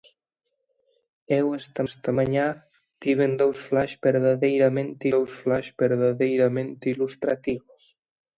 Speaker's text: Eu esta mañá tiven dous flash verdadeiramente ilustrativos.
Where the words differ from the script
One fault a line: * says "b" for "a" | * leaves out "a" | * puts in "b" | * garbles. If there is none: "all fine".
* puts in "esta"
* puts in "dous flash verdadeiramente"